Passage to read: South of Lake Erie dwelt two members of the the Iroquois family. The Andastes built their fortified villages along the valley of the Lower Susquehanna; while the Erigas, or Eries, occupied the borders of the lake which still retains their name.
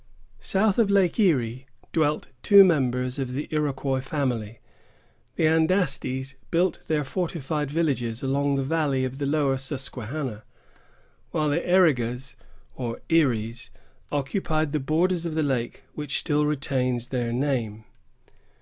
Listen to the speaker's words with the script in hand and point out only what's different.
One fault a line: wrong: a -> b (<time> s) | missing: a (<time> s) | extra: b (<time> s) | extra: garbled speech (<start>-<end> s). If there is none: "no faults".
missing: the (3.5 s)